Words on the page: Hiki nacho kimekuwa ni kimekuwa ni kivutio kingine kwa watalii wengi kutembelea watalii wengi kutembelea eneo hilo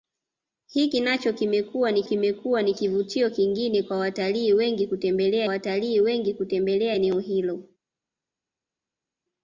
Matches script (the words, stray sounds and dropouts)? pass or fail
pass